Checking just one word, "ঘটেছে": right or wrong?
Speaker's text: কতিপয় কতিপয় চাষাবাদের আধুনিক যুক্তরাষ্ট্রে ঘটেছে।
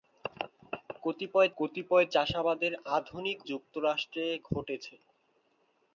right